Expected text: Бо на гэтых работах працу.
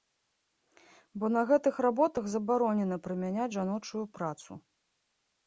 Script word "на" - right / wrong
right